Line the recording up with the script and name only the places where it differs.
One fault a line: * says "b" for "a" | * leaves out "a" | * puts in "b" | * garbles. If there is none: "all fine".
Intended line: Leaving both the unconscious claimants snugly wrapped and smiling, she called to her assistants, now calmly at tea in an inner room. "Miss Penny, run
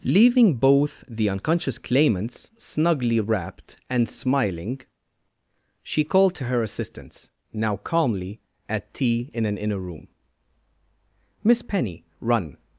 all fine